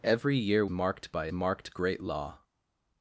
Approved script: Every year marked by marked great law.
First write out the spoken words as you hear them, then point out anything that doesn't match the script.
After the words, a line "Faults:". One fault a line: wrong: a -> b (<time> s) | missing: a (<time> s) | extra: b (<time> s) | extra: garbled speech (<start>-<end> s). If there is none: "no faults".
Every year marked by marked great law.
Faults:
no faults